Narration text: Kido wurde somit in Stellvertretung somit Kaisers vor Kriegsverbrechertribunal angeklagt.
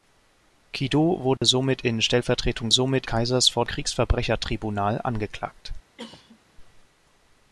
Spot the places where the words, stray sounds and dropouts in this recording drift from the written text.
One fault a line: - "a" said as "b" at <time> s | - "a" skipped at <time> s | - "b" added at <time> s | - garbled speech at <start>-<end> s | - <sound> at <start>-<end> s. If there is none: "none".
- dropout at 1.4-1.4 s
- cough at 6.0-6.4 s